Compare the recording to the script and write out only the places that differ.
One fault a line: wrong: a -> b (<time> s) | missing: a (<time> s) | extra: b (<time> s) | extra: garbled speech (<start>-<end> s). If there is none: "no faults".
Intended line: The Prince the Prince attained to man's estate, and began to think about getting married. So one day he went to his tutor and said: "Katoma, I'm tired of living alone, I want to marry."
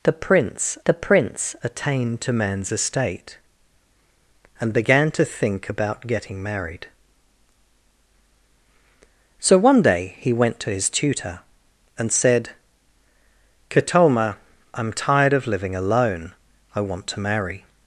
no faults